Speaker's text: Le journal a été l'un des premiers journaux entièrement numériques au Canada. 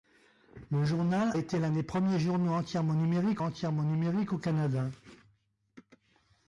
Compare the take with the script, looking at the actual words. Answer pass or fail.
fail